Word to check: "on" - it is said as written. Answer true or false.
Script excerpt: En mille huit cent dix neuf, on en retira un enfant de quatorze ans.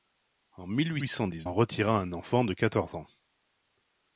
false